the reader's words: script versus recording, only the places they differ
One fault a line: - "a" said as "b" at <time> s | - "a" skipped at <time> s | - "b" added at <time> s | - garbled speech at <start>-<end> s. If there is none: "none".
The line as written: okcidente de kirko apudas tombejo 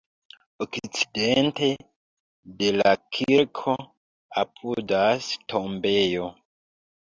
- "la" added at 2.8 s